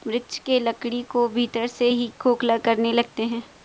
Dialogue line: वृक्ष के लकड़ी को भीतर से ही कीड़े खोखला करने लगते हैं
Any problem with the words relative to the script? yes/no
yes